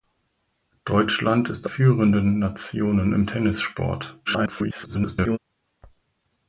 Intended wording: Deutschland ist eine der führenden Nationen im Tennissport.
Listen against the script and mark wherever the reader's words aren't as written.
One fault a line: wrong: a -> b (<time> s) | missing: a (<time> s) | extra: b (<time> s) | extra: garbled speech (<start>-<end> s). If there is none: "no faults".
missing: eine der (1.7 s)
extra: garbled speech (4.2-5.4 s)